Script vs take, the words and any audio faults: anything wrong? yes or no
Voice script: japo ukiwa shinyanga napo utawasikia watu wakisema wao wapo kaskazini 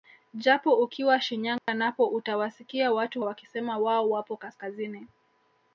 yes